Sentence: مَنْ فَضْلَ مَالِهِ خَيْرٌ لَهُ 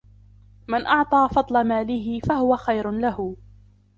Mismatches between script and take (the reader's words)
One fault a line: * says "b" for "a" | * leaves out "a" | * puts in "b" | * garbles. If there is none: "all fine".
* puts in "أَعْطَى"
* puts in "فَهُوَ"